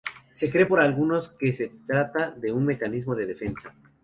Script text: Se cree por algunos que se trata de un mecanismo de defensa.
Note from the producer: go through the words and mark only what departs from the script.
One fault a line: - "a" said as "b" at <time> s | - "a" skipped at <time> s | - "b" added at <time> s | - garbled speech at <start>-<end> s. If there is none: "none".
none